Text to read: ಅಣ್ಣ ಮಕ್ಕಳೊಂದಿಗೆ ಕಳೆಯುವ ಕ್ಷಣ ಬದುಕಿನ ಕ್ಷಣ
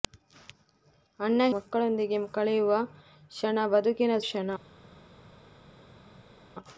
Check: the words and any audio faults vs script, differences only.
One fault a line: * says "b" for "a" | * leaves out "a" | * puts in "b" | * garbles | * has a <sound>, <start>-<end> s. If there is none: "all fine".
all fine